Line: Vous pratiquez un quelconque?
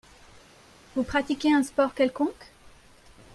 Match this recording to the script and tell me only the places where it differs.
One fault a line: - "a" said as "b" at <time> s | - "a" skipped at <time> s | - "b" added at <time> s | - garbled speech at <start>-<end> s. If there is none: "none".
- "sport" added at 1.6 s